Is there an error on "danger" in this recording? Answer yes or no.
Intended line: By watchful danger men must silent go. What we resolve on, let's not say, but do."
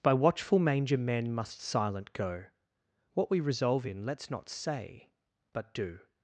yes